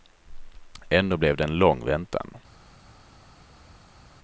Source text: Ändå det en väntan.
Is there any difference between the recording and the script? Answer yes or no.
yes